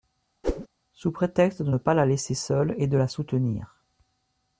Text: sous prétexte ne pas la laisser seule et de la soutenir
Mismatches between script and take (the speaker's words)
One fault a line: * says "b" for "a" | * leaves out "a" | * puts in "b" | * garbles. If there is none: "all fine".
* puts in "de"